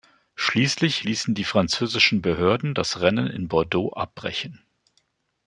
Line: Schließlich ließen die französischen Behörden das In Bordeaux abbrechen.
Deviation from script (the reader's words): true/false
true